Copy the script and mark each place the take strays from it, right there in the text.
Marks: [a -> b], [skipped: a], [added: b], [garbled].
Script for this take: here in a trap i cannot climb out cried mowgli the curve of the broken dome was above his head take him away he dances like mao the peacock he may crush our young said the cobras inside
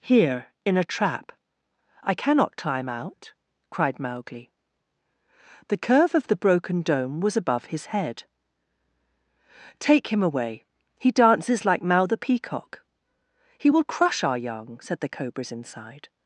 here in a trap i cannot climb out cried mowgli the curve of the broken dome was above his head take him away he dances like mao the peacock he [may -> will] crush our young said the cobras inside